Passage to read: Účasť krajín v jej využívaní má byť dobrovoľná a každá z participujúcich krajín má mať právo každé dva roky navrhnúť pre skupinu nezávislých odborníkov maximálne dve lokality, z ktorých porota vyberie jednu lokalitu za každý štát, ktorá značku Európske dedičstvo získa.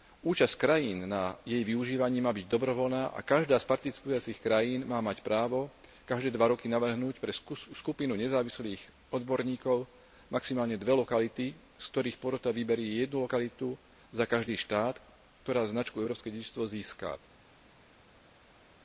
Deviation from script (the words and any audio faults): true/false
true